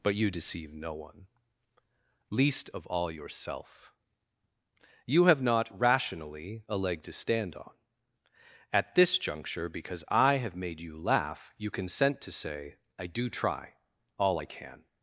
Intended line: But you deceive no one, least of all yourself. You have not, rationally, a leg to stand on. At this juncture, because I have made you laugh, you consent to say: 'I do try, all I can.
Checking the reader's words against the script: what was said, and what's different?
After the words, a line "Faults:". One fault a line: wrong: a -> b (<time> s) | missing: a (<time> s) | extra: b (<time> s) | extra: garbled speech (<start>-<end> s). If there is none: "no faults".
But you deceive no one, least of all yourself. You have not, rationally, a leg to stand on. At this juncture, because I have made you laugh, you consent to say: 'I do try, all I can.
Faults:
no faults